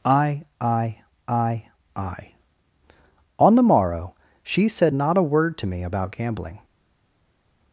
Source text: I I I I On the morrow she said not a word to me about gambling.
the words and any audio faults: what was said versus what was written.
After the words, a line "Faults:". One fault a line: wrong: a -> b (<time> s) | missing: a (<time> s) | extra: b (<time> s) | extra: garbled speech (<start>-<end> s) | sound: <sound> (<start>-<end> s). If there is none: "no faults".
I I I I On the morrow she said not a word to me about gambling.
Faults:
no faults